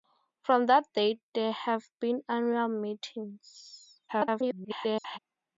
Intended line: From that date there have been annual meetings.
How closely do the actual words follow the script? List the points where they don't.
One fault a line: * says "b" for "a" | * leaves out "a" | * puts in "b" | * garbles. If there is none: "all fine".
* garbles